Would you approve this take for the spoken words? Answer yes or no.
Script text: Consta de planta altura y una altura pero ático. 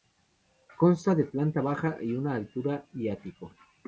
no